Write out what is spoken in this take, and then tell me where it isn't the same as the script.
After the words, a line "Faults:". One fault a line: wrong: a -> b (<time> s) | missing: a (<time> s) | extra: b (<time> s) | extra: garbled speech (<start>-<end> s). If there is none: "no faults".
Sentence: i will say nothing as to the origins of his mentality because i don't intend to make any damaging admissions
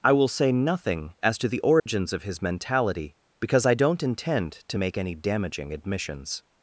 i will say nothing as to the origins of his mentality because i don't intend to make any damaging admissions
Faults:
no faults